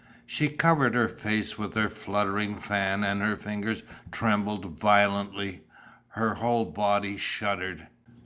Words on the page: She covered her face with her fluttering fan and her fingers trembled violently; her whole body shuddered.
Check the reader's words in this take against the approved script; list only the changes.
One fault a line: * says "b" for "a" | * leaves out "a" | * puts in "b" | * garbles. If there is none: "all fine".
all fine